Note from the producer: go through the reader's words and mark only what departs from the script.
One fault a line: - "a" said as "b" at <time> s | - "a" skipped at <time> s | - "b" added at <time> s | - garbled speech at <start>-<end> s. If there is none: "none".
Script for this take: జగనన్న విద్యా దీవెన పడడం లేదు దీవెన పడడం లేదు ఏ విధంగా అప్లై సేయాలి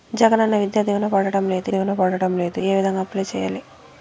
none